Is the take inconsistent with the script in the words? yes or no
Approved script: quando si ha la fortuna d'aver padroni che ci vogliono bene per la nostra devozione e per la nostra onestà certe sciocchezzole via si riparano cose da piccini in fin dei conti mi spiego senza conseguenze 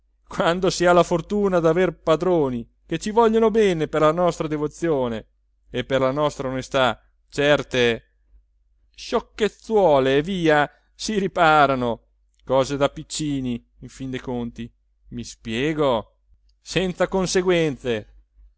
no